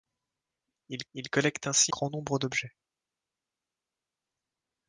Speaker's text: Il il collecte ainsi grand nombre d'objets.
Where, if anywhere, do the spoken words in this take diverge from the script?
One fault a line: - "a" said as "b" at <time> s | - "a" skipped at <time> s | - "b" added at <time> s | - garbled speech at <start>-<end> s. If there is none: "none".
none